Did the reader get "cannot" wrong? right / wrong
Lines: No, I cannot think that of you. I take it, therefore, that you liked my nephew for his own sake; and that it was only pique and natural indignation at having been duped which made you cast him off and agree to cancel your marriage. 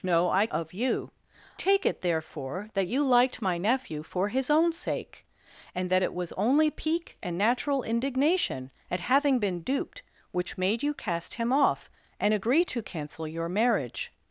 wrong